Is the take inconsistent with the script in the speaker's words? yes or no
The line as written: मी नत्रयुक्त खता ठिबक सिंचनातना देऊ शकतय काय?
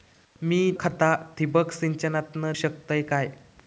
yes